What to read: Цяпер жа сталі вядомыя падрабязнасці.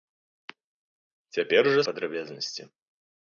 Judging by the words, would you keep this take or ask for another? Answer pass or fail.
fail